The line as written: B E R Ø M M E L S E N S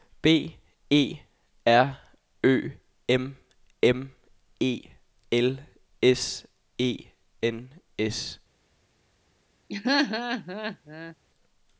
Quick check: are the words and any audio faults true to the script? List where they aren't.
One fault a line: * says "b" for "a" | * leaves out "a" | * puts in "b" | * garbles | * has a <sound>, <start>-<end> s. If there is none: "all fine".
* has a laugh, 9.7-11.2 s